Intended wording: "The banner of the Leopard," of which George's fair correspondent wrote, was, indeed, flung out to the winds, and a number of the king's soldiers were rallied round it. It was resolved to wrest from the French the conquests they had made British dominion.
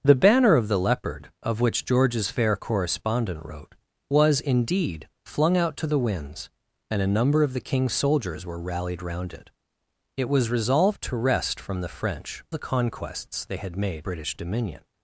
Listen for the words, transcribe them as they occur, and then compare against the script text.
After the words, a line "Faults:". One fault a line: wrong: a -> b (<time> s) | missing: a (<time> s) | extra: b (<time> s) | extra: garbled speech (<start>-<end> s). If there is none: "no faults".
"The banner of the Leopard," of which George's fair correspondent wrote, was, indeed, flung out to the winds, and a number of the king's soldiers were rallied round it. It was resolved to wrest from the French the conquests they had made British dominion.
Faults:
no faults